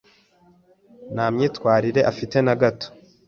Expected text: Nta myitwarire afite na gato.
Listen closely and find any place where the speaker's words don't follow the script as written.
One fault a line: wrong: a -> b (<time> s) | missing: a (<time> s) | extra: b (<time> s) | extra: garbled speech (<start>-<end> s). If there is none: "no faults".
no faults